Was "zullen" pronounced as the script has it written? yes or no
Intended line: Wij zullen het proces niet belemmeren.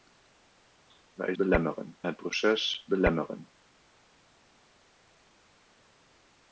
no